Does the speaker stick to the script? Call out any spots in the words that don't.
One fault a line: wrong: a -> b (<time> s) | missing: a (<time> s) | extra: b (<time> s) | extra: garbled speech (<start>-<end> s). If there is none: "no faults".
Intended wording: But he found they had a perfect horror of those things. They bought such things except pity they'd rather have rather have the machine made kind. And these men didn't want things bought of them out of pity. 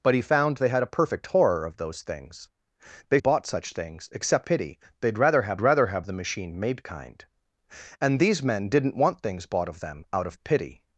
no faults